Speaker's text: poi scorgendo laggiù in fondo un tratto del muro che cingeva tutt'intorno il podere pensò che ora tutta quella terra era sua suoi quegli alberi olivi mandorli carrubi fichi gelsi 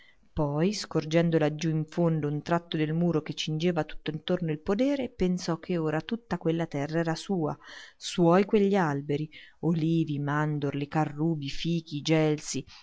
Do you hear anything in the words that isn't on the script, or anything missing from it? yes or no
no